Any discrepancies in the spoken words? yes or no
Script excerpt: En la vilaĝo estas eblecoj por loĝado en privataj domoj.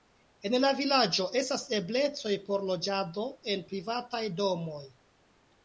no